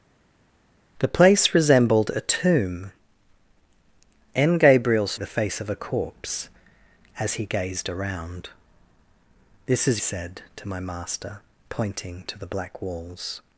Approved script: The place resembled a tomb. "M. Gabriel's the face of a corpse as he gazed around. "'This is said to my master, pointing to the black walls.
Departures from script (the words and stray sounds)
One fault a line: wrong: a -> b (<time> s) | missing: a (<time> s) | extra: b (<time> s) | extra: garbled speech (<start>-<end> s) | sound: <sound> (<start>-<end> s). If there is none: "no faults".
no faults